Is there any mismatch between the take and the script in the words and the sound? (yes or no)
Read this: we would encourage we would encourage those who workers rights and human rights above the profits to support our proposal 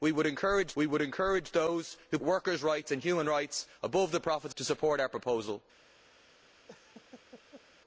yes